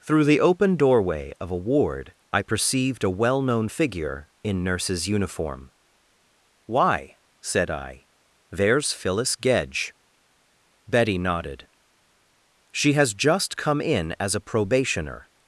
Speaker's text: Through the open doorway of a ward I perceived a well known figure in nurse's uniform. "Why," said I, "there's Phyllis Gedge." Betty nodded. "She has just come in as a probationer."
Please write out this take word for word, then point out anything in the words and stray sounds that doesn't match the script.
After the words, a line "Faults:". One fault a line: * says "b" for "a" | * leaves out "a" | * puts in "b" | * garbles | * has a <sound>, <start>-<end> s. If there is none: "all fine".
Through the open doorway of a ward I perceived a well known figure in nurse's uniform. "Why," said I, "there's Phyllis Gedge." Betty nodded. "She has just come in as a probationer."
Faults:
all fine